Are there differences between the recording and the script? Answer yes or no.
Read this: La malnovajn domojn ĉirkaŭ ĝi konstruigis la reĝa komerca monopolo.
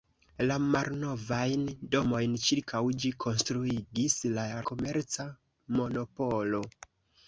yes